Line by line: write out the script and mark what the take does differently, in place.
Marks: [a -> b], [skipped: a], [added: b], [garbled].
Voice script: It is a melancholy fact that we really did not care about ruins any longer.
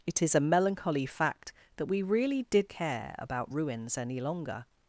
It is a melancholy fact that we really did [skipped: not] care about ruins any longer.